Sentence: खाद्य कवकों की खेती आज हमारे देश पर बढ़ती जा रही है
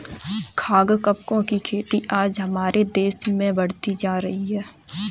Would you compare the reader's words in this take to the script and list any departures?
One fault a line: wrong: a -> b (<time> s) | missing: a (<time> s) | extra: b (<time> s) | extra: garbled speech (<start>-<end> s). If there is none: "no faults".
wrong: पर -> में (3.3 s)